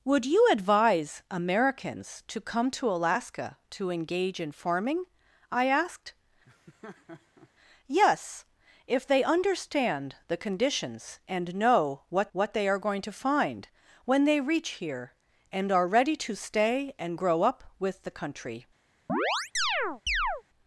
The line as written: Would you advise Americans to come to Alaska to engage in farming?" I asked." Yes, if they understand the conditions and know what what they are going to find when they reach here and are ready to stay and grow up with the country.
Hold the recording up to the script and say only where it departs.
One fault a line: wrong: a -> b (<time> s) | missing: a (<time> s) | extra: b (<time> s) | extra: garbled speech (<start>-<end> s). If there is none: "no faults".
no faults